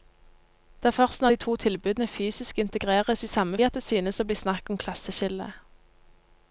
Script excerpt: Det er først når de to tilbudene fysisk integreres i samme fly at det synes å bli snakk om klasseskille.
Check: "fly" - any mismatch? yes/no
yes